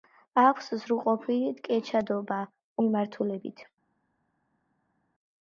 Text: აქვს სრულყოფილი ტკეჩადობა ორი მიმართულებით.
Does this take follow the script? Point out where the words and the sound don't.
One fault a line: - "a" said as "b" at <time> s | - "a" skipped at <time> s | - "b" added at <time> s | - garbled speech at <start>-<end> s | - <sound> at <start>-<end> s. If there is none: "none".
- "ორი" skipped at 2.4 s